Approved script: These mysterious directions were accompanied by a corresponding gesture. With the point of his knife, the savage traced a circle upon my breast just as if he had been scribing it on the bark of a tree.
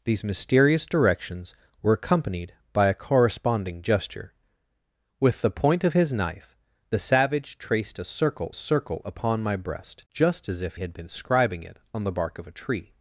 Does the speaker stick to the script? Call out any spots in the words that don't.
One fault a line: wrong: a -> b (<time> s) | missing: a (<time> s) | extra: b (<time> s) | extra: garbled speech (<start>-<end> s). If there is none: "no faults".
extra: circle (8.5 s)
missing: he (10.8 s)